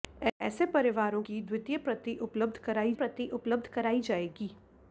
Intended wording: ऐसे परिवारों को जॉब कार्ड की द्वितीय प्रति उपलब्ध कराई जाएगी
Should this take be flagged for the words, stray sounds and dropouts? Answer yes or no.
yes